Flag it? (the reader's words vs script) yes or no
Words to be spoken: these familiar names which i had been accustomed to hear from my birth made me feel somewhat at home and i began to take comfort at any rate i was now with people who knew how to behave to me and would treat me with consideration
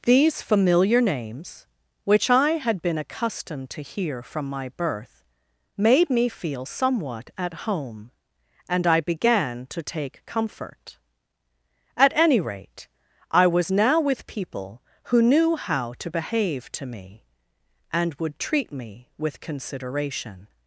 no